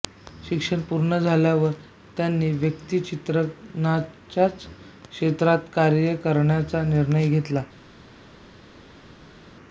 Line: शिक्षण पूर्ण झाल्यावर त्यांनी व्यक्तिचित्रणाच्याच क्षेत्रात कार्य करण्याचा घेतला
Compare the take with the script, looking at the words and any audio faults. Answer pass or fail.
fail